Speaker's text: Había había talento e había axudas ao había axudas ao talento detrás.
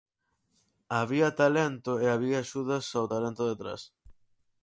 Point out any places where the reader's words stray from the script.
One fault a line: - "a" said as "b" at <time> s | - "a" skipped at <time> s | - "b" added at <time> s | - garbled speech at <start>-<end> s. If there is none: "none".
- "había" skipped at 1.3 s
- "había axudas ao" skipped at 3.1 s